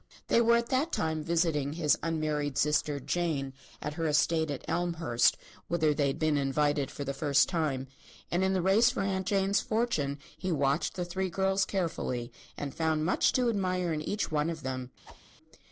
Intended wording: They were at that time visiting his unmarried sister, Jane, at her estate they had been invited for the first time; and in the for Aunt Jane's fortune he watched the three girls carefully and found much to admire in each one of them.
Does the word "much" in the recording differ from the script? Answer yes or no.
no